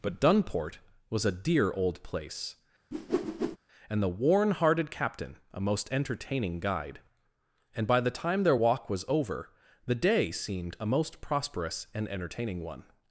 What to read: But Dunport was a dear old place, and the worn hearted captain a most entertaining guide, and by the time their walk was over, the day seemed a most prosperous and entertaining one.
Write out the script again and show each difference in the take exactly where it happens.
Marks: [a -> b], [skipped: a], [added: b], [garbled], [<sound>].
But Dunport was a dear old place, [whoosh] and the worn hearted captain a most entertaining guide, and by the time their walk was over, the day seemed a most prosperous and entertaining one.